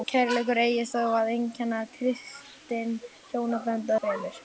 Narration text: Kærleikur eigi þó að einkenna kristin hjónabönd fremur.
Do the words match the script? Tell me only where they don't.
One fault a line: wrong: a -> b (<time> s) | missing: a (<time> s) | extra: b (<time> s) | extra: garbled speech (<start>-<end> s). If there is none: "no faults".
no faults